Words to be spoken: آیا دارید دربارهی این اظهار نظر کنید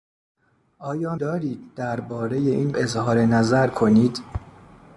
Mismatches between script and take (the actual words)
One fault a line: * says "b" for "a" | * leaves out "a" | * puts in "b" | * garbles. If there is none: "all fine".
all fine